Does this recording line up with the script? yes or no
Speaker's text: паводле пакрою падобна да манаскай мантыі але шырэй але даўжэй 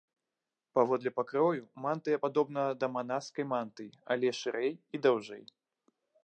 no